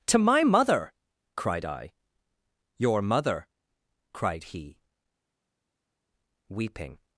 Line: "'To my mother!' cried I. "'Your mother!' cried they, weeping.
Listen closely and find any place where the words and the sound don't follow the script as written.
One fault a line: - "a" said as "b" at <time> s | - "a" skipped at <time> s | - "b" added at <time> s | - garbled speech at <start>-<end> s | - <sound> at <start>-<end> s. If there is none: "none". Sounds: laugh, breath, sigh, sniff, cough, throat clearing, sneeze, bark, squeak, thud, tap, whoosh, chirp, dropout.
- "they" said as "he" at 4.4 s